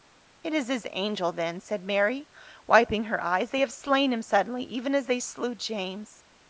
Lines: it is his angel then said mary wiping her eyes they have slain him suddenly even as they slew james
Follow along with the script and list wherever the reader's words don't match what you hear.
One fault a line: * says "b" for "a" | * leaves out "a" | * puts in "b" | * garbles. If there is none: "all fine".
all fine